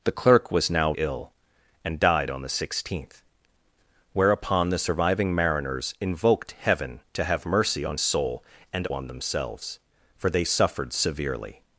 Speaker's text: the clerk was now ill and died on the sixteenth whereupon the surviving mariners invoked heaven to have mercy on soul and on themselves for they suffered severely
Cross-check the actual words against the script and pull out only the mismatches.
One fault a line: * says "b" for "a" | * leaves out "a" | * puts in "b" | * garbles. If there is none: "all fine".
all fine